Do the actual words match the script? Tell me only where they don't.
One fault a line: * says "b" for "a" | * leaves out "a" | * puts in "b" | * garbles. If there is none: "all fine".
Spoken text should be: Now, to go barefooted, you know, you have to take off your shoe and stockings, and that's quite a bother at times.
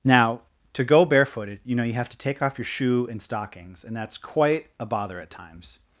all fine